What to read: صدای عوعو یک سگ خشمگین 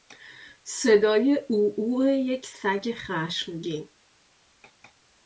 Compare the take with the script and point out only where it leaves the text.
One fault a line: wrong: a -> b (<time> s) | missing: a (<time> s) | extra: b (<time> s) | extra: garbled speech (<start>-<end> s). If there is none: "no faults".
no faults